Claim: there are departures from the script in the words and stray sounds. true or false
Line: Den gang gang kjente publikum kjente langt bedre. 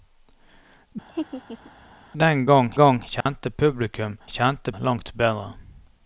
true